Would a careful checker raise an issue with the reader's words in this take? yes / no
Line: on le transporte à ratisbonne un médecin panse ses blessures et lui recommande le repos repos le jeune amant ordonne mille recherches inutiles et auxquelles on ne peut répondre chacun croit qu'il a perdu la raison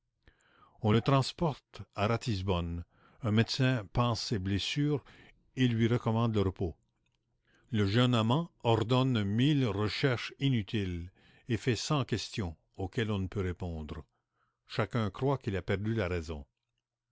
yes